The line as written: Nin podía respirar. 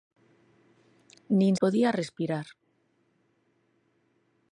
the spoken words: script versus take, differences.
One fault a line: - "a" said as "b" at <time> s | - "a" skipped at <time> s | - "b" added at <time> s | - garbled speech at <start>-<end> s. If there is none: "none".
none